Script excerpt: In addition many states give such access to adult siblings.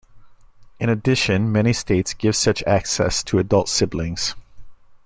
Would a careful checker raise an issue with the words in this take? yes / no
no